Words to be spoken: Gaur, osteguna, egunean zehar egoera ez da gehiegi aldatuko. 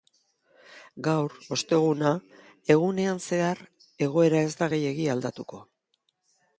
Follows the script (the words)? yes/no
yes